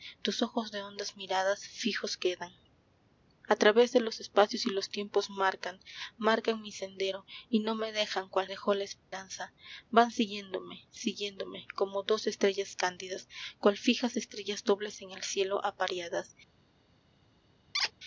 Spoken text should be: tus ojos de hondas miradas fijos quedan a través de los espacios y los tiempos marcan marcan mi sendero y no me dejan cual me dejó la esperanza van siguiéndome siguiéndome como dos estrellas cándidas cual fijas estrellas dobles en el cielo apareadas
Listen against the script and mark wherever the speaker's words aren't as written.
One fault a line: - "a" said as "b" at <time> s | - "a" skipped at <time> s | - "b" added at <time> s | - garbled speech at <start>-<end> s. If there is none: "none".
- "me" skipped at 8.5 s